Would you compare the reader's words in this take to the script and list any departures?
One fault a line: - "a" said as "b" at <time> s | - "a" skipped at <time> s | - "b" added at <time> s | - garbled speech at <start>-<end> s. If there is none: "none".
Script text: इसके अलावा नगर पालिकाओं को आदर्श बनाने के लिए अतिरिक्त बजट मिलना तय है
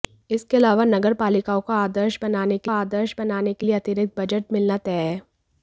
- "आदर्श बनाने के" added at 2.7 s